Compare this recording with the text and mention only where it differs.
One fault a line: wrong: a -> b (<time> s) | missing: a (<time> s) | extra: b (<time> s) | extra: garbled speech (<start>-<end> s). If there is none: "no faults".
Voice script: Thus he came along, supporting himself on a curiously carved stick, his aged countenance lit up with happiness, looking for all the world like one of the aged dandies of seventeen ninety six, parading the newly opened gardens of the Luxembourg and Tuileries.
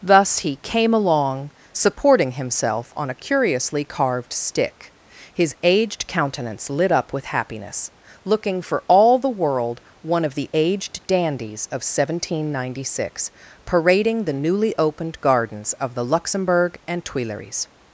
missing: like (9.8 s)